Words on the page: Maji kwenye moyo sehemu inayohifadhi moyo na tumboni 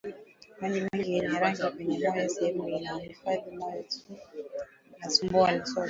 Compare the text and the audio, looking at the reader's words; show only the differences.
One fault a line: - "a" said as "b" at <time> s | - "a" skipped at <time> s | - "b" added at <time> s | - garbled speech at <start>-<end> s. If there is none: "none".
- "mengi yenye rangi" added at 0.9 s